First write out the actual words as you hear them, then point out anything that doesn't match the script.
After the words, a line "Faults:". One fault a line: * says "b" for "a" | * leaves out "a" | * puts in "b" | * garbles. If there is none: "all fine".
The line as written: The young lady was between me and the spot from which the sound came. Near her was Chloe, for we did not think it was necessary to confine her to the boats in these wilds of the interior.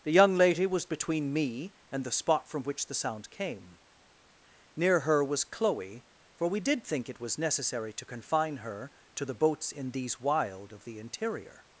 The young lady was between me and the spot from which the sound came. Near her was Chloe, for we did think it was necessary to confine her to the boats in these wild of the interior.
Faults:
* leaves out "not"
* says "wild" for "wilds"